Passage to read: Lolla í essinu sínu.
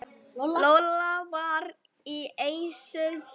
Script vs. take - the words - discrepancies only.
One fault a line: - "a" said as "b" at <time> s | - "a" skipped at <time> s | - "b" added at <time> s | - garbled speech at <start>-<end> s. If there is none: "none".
- "var" added at 1.3 s